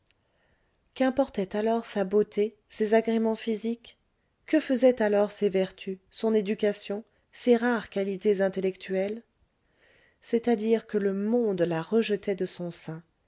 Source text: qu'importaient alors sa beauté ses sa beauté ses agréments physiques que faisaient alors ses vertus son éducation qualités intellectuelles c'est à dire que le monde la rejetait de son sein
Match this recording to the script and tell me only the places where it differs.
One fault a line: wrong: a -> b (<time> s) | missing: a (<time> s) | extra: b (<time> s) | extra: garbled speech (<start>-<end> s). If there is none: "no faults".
missing: sa beauté ses (3.0 s)
extra: ses rares (7.3 s)